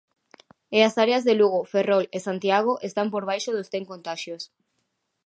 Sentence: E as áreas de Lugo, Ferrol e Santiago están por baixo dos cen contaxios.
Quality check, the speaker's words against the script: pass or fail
pass